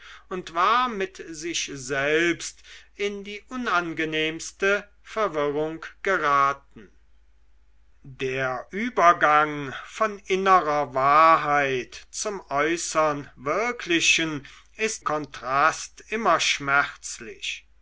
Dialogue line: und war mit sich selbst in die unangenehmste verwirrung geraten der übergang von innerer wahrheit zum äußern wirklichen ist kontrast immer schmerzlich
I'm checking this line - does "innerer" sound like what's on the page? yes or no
yes